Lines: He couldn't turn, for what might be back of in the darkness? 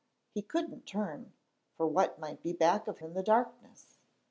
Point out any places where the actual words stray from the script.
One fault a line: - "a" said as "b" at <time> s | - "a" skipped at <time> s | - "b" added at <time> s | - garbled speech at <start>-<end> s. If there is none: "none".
none